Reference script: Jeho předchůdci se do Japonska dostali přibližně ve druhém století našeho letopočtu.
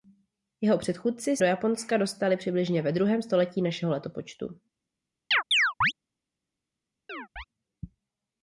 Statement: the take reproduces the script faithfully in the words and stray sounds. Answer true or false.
false